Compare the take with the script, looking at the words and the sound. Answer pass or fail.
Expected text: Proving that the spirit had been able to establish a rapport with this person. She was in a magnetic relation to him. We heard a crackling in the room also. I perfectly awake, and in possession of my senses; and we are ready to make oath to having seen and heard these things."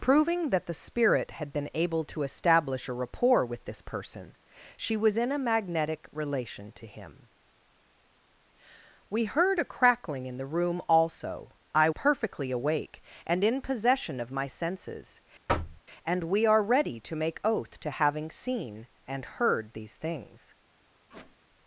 fail